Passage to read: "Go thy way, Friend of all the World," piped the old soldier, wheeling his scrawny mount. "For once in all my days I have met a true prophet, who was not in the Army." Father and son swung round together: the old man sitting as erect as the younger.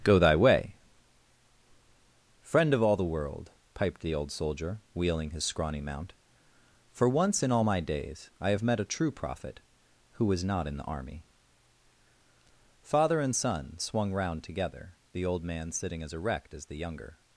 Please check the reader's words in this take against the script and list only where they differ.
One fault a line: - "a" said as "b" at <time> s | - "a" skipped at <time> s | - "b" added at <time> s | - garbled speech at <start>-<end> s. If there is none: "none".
none